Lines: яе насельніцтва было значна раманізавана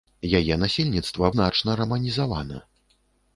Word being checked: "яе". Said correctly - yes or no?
yes